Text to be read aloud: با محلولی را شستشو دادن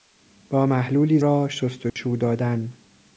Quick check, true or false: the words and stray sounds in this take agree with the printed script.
false